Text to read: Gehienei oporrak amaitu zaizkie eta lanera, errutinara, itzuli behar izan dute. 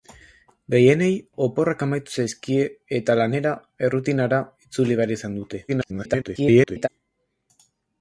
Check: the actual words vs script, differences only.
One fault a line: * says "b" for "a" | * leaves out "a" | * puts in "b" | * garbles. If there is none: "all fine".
* garbles